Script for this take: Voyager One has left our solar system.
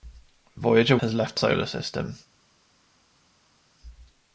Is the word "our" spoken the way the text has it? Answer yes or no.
no